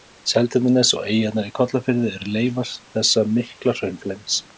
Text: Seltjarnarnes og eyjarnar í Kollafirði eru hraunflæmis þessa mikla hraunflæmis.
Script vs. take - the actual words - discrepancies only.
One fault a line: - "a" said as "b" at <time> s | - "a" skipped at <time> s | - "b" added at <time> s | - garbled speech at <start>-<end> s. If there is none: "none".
- "hraunflæmis" said as "leifar" at 2.4 s